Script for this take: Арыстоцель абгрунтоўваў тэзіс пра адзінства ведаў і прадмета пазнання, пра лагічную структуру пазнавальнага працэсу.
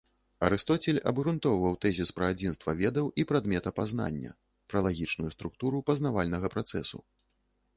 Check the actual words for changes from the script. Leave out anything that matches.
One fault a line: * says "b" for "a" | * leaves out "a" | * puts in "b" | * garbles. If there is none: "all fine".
all fine